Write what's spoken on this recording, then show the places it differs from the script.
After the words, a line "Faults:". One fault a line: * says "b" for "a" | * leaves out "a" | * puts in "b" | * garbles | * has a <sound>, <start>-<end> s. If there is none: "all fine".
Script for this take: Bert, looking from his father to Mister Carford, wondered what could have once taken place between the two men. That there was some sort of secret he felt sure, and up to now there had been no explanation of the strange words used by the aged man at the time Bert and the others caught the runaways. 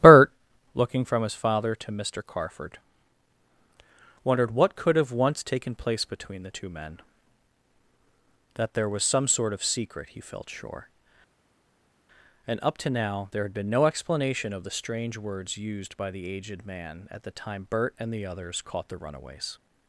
Bert, looking from his father to Mister Carford, wondered what could have once taken place between the two men. That there was some sort of secret he felt sure, and up to now there had been no explanation of the strange words used by the aged man at the time Bert and the others caught the runaways.
Faults:
all fine